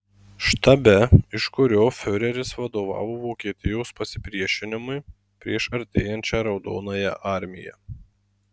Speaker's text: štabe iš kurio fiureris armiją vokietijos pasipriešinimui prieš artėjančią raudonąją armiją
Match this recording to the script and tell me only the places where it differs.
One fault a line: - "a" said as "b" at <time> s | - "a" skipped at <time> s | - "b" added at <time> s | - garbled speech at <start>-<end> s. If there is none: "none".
- "armiją" said as "vadovavo" at 2.6 s